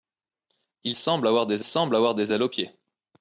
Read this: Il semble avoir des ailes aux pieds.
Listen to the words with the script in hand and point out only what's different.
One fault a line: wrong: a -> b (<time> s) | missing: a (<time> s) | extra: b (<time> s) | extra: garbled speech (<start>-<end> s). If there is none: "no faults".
extra: semble avoir des (1.6 s)